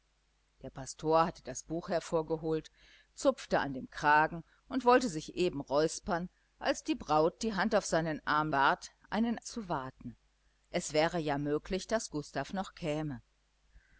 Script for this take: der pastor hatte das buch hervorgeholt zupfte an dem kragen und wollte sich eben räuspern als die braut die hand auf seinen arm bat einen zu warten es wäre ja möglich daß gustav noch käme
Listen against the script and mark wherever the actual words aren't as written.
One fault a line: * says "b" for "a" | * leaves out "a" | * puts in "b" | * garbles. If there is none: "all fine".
all fine